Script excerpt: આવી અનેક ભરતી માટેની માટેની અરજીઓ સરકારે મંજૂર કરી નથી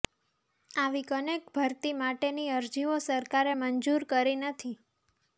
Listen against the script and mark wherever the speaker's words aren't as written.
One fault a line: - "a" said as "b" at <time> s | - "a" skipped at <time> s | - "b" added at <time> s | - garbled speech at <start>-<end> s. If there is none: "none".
- "માટેની" skipped at 2.5 s